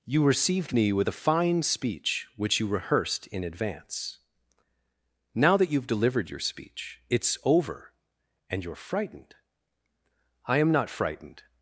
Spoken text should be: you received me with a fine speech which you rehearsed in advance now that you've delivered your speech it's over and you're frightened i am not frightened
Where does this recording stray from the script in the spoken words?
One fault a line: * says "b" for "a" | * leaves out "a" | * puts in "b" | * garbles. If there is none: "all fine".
all fine